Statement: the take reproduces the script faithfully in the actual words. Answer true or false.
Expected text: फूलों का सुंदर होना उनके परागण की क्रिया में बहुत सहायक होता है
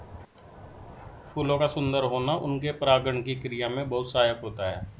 true